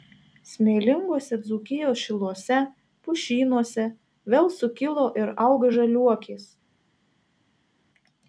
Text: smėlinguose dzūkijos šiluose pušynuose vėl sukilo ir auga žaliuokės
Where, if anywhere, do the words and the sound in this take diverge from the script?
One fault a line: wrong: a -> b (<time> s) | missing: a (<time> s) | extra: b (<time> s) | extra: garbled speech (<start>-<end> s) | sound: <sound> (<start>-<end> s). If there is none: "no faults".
no faults